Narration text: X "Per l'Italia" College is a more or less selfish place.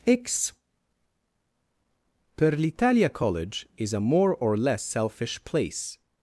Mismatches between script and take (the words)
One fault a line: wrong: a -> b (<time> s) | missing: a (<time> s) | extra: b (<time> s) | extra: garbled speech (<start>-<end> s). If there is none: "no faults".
no faults